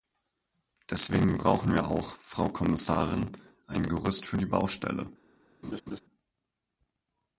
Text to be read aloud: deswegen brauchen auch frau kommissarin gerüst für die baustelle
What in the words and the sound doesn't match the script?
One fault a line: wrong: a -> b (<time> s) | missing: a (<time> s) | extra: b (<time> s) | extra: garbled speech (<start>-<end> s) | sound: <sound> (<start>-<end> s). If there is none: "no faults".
extra: wir (1.7 s)
extra: ein (3.7 s)
sound: laugh (5.6-6.0 s)